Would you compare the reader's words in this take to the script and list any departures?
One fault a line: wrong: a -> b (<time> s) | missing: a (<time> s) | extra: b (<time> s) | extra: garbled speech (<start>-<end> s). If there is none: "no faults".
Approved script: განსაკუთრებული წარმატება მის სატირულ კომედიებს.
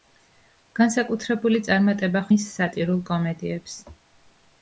no faults